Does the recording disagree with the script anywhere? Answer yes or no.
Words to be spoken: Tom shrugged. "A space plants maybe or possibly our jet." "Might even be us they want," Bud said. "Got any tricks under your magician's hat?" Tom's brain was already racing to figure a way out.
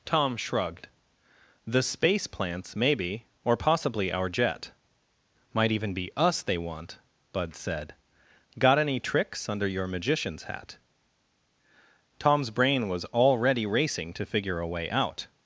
yes